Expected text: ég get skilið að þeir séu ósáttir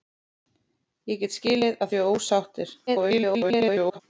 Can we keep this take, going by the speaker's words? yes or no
no